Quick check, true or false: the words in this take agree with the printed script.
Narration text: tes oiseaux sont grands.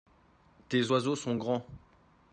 true